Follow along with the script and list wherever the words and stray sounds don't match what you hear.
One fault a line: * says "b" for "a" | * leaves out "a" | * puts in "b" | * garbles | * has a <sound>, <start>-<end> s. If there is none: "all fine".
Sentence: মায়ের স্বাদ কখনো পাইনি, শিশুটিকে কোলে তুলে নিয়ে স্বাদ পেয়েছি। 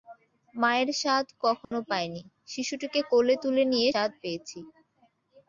* has a dropout, 1.6-1.7 s